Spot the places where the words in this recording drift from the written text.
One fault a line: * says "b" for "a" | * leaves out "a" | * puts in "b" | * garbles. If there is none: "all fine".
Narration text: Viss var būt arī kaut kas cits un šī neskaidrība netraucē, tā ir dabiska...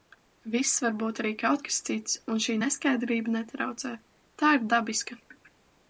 all fine